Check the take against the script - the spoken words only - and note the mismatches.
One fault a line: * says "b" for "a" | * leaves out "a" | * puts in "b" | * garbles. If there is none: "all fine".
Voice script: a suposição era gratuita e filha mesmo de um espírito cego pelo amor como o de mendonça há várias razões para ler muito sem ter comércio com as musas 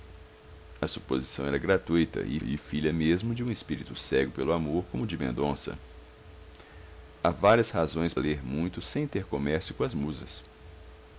* puts in "e"
* leaves out "para"